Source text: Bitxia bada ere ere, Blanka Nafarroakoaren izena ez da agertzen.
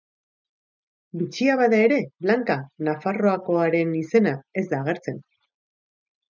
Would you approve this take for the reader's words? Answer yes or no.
no